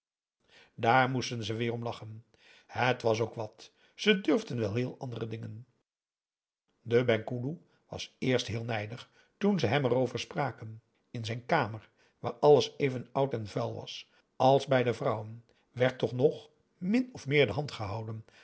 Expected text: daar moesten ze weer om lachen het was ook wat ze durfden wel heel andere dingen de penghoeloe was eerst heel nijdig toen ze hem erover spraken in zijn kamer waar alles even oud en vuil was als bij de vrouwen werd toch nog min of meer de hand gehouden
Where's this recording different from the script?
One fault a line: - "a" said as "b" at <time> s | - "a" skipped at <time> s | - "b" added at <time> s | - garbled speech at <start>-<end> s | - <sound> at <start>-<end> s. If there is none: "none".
none